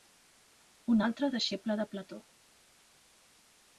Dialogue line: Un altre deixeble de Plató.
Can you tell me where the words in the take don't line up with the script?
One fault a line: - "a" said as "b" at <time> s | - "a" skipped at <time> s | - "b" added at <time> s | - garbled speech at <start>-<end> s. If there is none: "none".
none